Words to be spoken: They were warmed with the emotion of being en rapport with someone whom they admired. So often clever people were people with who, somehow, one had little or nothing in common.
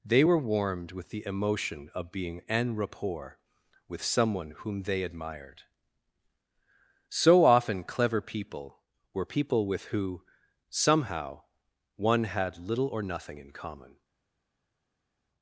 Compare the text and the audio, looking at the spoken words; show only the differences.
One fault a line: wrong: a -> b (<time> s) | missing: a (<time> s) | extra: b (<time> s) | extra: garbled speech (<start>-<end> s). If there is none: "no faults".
no faults